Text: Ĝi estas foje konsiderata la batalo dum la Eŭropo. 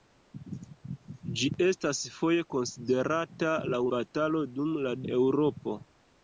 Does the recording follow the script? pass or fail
pass